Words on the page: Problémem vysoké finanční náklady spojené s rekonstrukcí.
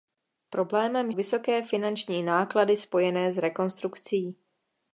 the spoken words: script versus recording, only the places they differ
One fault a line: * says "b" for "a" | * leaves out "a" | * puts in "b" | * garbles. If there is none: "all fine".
all fine